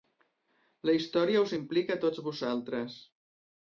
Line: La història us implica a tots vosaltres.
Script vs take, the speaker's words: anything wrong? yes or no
no